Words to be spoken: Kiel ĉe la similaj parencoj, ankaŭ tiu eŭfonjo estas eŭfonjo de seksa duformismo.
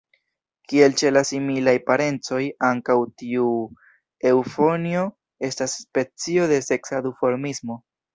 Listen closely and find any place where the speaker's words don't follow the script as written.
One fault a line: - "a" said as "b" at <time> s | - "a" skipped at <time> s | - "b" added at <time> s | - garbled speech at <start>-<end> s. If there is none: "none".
- "eŭfonjo" said as "specio" at 5.8 s